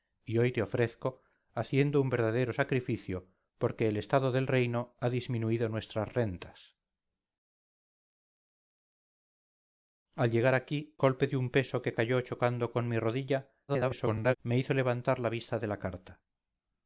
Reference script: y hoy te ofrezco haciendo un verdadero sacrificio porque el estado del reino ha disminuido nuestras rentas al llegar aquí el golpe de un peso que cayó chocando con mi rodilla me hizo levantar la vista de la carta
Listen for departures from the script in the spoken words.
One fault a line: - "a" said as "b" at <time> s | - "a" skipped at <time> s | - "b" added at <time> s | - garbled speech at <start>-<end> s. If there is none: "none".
- "el" skipped at 11.0 s
- garbled speech at 13.7-14.4 s